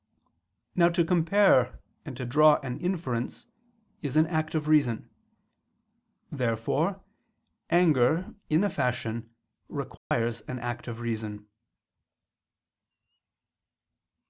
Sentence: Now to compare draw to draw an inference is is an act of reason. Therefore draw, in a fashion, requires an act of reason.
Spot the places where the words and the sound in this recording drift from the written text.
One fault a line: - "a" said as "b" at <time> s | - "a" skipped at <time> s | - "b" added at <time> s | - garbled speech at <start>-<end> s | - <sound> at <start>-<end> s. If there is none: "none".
- "draw" said as "and" at 2.1 s
- "is" skipped at 4.2 s
- "draw" said as "anger" at 7.7 s
- dropout at 10.0-10.1 s